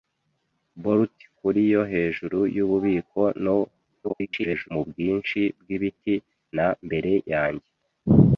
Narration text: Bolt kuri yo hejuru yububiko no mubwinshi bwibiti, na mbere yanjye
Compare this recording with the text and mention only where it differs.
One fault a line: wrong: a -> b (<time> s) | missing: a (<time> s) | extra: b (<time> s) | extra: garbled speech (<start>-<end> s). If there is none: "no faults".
extra: garbled speech (4.0-4.7 s)